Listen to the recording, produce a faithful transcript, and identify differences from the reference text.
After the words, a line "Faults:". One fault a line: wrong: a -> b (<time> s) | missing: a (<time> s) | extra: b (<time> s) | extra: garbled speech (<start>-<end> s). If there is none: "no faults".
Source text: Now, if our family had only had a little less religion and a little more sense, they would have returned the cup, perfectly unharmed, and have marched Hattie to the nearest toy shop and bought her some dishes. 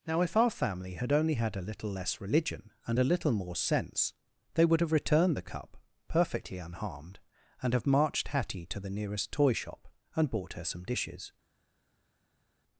Now, if our family had only had a little less religion and a little more sense, they would have returned the cup, perfectly unharmed, and have marched Hattie to the nearest toy shop and bought her some dishes.
Faults:
no faults